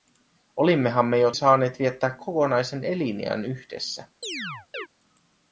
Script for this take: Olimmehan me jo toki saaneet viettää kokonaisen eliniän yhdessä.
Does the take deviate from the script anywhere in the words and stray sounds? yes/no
yes